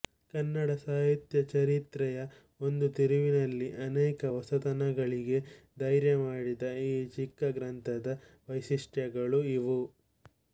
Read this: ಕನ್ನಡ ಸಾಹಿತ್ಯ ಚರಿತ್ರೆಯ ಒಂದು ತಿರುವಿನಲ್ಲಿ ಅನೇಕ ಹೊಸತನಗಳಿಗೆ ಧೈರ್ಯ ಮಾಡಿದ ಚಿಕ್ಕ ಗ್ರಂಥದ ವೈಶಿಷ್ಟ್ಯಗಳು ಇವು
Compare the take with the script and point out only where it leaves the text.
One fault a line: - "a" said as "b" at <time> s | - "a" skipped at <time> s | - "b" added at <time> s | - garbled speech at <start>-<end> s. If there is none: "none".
- "ಈ" added at 6.8 s